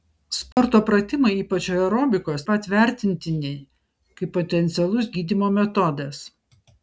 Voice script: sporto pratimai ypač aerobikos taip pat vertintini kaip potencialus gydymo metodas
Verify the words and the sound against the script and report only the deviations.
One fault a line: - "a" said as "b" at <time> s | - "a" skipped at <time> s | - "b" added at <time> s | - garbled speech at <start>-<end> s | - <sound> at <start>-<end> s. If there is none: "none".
- dropout at 0.5-0.6 s
- "taip" skipped at 2.5 s